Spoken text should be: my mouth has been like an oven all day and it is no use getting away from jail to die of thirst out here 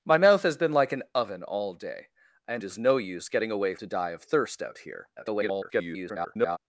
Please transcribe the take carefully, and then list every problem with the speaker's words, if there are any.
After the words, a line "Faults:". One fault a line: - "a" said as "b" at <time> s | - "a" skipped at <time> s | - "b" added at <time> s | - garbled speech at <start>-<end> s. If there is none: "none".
my mouth has been like an oven all day and is no use getting away to die of thirst out here [garbled]
Faults:
- "it" skipped at 2.6 s
- "from jail" skipped at 3.7 s
- garbled speech at 5.2-6.6 s